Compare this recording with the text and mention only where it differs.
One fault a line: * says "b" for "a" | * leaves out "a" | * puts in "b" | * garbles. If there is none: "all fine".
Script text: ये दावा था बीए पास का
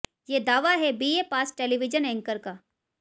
* says "है" for "था"
* puts in "टेलीविजन एंकर"